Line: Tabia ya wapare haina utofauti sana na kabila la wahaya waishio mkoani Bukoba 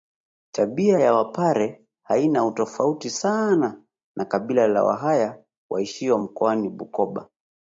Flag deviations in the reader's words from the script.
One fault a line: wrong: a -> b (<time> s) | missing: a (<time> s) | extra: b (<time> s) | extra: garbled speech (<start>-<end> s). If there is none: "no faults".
no faults